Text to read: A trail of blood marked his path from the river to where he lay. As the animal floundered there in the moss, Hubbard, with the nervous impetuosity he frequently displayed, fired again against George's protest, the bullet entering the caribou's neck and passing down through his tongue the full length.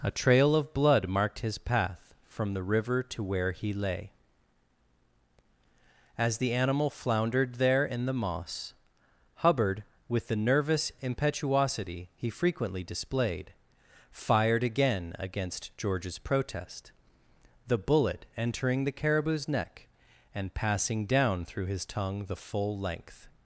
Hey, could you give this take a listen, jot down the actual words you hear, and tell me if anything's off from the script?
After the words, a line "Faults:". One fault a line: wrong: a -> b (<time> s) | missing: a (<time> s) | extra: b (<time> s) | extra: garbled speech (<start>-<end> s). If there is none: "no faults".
A trail of blood marked his path from the river to where he lay. As the animal floundered there in the moss, Hubbard, with the nervous impetuosity he frequently displayed, fired again against George's protest, the bullet entering the caribou's neck and passing down through his tongue the full length.
Faults:
no faults